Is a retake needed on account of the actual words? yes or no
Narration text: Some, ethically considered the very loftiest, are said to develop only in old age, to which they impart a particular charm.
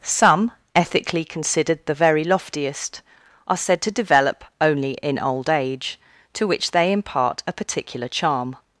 no